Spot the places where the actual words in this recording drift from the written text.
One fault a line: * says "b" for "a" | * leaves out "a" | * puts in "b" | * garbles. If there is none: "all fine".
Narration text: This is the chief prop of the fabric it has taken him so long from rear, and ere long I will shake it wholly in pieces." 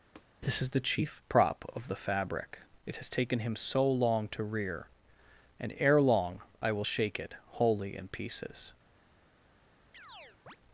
* says "to" for "from"